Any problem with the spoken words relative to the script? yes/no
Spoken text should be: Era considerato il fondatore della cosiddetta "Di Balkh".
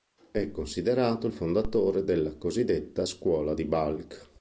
yes